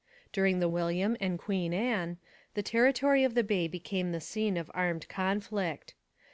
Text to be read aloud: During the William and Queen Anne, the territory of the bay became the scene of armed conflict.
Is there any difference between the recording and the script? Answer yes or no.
no